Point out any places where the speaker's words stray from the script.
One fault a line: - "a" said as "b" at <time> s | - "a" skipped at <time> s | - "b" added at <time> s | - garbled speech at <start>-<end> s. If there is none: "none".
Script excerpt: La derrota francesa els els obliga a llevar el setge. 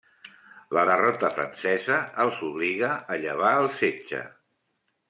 - "els" skipped at 2.4 s